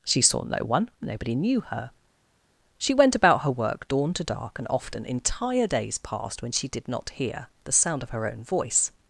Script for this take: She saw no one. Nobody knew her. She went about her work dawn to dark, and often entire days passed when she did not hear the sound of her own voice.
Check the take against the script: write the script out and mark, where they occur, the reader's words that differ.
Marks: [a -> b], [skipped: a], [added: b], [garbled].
She saw no one. Nobody knew her. She went about her work dawn to dark, and often entire days passed when she did not hear the sound of her own voice.